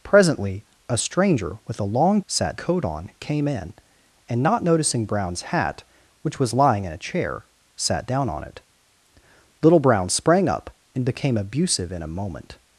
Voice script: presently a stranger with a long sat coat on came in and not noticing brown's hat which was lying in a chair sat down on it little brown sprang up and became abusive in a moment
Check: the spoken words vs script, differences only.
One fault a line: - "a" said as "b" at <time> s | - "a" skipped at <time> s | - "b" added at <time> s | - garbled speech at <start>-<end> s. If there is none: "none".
none